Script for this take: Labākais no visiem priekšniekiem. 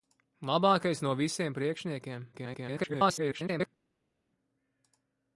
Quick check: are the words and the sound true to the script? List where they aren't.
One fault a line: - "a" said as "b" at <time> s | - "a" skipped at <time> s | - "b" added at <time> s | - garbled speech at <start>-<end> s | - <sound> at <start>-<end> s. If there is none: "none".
- garbled speech at 2.3-3.7 s